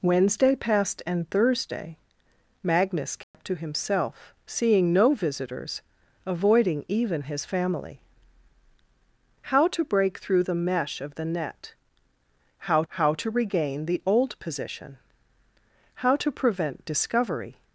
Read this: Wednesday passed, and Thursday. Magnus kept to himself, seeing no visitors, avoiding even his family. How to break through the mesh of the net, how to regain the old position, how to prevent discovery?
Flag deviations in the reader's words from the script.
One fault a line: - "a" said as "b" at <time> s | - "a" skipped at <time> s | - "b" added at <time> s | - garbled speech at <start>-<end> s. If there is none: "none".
- "how" added at 12.9 s